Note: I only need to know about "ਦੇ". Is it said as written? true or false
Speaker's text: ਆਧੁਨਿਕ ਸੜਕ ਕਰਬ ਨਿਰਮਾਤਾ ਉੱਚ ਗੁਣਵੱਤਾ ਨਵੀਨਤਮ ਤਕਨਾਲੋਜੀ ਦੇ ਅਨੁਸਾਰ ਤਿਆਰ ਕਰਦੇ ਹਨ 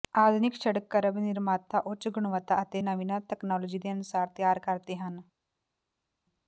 true